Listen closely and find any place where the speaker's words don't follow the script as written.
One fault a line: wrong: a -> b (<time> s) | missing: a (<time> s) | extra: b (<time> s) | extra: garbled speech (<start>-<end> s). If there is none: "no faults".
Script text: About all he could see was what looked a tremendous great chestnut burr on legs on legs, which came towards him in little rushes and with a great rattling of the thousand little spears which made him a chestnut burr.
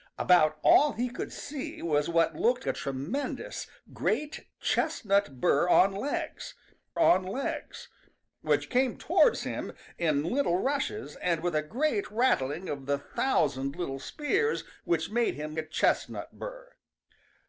no faults